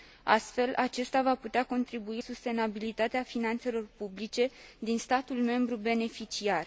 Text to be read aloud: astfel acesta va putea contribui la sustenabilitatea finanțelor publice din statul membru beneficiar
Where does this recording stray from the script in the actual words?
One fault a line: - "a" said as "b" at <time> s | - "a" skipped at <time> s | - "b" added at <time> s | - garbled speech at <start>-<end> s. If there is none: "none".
- "la" skipped at 2.2 s